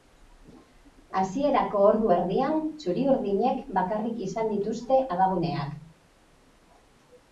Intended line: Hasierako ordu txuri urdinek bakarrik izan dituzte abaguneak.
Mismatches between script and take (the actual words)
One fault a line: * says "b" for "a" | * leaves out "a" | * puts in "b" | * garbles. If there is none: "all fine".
* puts in "erdian"